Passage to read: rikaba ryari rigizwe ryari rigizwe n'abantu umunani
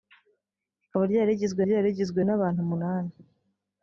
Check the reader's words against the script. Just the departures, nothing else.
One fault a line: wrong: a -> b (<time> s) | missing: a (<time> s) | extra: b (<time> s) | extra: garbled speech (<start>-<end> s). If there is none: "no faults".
no faults